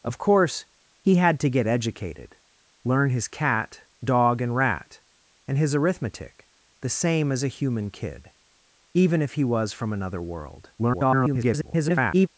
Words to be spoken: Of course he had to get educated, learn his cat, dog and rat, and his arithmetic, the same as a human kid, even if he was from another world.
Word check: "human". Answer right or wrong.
right